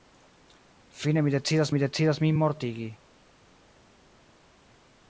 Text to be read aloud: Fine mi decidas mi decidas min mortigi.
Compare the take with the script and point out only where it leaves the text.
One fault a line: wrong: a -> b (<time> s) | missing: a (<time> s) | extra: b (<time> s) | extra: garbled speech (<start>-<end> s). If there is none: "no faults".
no faults